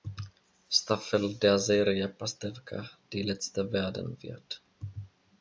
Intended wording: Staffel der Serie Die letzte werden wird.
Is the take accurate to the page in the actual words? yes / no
no